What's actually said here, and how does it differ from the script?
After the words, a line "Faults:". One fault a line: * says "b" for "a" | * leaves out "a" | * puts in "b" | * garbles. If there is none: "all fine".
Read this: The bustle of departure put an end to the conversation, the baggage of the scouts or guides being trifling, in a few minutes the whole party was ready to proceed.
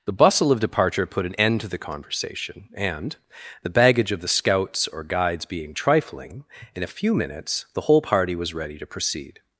The bustle of departure put an end to the conversation, and, the baggage of the scouts or guides being trifling, in a few minutes the whole party was ready to proceed.
Faults:
* puts in "and"